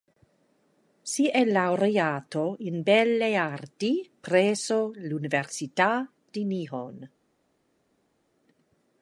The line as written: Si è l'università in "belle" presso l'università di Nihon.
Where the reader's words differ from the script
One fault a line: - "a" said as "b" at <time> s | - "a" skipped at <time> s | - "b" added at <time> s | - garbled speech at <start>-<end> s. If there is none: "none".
- "l'università" said as "laureato" at 1.4 s
- "arti" added at 3.4 s